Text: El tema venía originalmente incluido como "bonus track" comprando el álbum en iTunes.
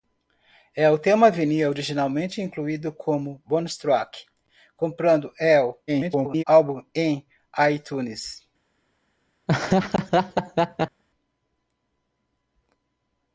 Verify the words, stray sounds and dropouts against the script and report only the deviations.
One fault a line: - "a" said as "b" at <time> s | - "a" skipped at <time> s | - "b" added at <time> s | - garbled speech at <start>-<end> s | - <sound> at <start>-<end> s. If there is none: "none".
- garbled speech at 5.9-6.4 s
- laugh at 9.5-11.0 s